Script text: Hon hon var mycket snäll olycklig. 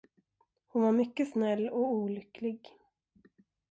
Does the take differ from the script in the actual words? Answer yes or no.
yes